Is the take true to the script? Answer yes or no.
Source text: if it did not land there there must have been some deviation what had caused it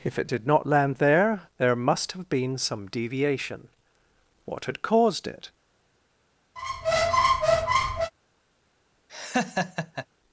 yes